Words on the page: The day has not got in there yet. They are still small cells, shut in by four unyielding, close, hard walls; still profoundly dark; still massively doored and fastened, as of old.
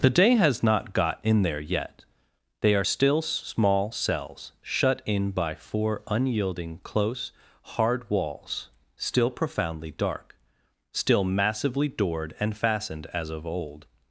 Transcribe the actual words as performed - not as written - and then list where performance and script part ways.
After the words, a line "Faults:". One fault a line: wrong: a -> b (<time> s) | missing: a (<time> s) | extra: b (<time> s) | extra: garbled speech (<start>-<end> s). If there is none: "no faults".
The day has not got in there yet. They are still small cells, shut in by four unyielding, close, hard walls; still profoundly dark; still massively doored and fastened, as of old.
Faults:
no faults